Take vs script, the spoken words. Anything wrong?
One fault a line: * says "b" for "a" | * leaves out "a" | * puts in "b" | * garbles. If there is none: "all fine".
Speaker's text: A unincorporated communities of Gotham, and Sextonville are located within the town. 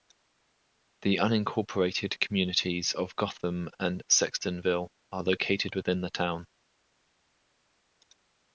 * says "The" for "A"